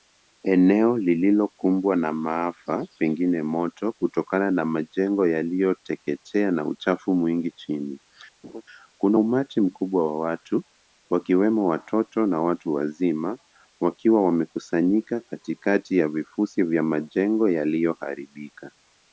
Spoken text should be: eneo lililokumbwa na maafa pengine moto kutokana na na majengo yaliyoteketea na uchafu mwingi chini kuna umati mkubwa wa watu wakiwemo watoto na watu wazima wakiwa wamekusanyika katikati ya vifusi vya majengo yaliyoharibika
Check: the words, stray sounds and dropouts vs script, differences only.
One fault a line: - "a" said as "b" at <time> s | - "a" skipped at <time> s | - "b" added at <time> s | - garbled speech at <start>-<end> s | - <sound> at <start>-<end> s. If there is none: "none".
- "na" skipped at 4.7 s
- laugh at 8.4-8.6 s